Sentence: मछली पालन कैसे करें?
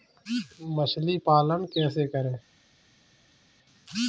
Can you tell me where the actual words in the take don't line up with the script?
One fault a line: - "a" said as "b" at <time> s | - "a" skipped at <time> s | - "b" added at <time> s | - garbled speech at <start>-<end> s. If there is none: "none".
none